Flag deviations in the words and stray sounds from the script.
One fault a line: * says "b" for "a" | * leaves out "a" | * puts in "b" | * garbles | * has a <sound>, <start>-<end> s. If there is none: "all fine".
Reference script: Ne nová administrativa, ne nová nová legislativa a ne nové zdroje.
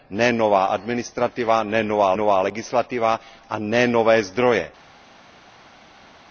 all fine